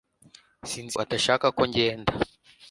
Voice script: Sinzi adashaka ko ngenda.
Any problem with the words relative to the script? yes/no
no